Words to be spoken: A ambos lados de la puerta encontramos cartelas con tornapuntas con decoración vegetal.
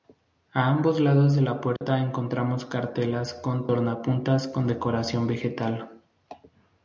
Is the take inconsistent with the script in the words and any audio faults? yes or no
yes